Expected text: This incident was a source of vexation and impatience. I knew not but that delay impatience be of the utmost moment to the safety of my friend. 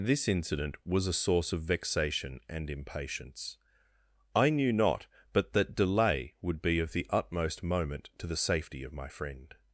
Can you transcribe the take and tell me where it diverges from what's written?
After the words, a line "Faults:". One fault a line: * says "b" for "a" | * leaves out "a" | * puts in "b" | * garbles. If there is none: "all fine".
This incident was a source of vexation and impatience. I knew not but that delay would be of the utmost moment to the safety of my friend.
Faults:
* says "would" for "impatience"